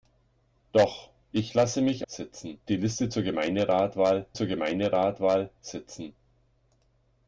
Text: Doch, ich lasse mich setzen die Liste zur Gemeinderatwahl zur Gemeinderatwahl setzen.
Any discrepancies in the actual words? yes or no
no